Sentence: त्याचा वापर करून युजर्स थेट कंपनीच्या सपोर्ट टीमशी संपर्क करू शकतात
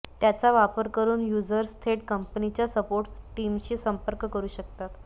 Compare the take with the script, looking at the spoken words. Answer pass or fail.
pass